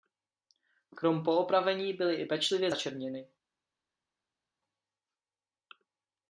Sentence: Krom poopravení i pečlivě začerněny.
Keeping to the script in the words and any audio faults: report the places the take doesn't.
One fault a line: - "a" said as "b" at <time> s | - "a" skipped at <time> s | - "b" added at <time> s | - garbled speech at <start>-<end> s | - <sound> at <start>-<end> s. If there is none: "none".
- "byly" added at 1.9 s